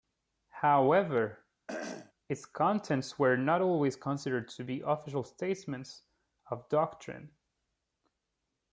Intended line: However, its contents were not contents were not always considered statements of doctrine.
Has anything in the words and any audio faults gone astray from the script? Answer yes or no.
yes